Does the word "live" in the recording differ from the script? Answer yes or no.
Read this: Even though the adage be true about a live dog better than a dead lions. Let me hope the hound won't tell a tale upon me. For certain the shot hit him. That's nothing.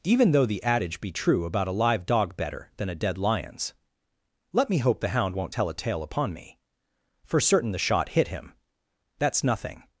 no